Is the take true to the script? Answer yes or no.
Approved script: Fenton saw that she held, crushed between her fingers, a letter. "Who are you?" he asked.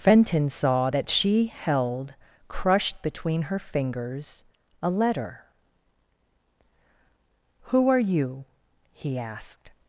yes